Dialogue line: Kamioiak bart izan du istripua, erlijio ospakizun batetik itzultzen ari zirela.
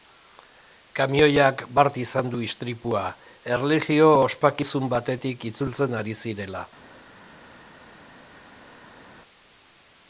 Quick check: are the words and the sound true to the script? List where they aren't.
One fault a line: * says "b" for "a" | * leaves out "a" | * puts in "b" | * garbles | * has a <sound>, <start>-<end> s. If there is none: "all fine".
all fine